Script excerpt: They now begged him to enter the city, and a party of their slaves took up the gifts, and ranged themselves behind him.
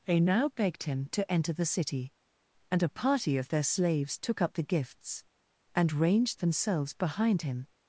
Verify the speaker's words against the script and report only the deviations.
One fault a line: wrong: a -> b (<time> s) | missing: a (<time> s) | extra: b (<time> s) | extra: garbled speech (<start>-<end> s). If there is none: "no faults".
no faults